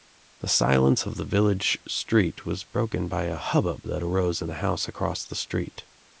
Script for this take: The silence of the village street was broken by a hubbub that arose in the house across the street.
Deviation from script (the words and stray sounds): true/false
false